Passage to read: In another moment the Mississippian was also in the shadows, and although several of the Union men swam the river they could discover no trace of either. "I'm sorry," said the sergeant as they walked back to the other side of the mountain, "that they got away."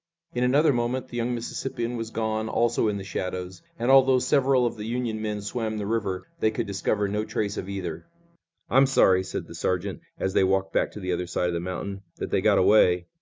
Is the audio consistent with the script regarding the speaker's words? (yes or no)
no